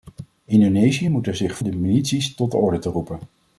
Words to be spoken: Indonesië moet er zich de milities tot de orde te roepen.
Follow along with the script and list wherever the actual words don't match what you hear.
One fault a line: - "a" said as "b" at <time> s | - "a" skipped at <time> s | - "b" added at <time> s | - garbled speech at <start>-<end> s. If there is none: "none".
none